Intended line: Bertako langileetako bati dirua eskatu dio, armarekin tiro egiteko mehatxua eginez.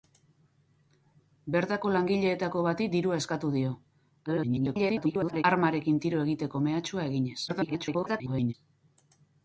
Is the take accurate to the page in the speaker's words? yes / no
no